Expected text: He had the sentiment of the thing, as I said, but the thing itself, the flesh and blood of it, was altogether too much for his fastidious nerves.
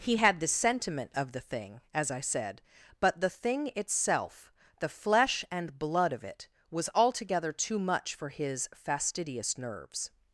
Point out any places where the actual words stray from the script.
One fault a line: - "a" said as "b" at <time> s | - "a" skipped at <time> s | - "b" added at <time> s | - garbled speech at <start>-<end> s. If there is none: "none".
none